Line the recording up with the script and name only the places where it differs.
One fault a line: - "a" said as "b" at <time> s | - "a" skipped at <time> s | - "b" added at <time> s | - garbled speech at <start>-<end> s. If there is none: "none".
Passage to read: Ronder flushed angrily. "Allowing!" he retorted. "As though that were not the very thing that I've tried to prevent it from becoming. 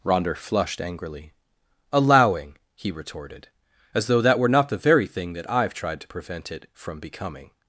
none